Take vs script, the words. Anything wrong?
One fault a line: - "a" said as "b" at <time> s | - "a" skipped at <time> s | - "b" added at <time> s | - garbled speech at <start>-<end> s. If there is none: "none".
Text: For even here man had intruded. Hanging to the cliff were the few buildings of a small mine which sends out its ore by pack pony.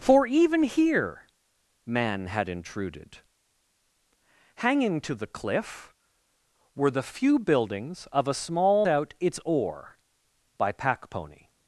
- "mine which sends" skipped at 8.9 s